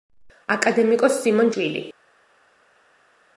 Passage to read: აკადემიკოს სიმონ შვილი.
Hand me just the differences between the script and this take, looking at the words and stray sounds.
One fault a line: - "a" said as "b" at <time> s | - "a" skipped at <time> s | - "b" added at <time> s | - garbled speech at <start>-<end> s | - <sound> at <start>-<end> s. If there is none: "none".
none